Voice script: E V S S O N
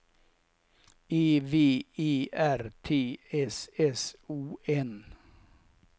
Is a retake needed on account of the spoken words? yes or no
yes